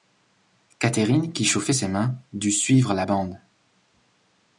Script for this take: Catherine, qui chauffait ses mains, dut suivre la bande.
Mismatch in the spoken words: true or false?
false